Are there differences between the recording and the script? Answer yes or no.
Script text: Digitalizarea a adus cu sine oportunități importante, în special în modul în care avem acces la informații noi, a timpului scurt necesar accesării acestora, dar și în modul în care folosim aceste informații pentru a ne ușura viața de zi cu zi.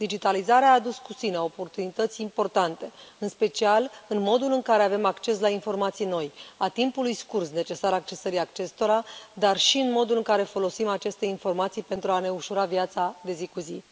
no